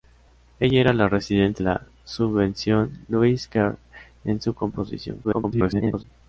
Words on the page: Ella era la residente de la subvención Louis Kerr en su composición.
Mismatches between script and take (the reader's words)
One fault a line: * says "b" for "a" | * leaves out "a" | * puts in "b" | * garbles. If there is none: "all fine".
* leaves out "de"
* garbles